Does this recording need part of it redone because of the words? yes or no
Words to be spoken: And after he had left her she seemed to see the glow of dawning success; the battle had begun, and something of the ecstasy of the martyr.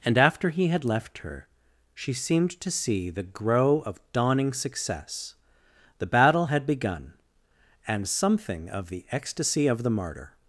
yes